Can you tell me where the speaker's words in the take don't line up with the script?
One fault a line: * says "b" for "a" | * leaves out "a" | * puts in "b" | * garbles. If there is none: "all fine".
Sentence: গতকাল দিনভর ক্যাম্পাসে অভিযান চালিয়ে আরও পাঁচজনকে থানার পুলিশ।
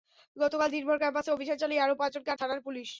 all fine